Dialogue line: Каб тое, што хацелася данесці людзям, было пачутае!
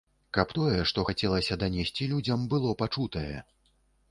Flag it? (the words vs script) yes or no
no